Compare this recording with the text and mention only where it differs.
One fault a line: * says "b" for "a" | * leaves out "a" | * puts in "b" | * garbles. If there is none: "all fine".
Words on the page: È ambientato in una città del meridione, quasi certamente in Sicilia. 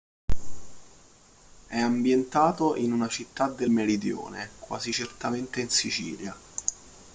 all fine